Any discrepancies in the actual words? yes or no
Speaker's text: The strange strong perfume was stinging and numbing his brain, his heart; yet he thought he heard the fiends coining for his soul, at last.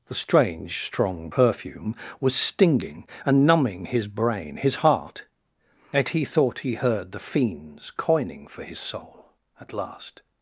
no